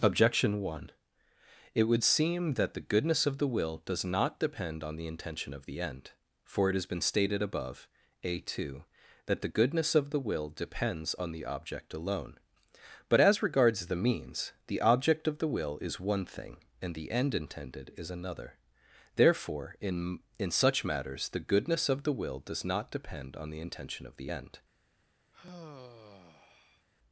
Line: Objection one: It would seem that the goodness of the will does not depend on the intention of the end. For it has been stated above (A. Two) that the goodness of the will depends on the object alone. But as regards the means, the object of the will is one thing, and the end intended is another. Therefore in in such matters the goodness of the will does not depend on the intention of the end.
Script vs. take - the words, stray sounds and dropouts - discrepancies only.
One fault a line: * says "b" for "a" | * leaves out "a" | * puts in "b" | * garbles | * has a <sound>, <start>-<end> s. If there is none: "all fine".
* has a sigh, 25.3-26.9 s